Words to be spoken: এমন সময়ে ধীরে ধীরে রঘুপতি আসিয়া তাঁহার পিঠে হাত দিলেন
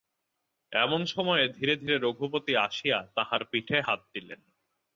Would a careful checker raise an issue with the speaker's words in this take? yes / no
no